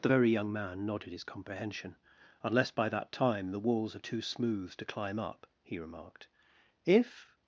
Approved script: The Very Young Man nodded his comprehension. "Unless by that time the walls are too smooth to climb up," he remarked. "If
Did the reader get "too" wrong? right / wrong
right